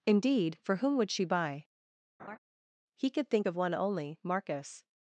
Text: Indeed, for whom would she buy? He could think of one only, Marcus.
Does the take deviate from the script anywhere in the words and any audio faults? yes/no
yes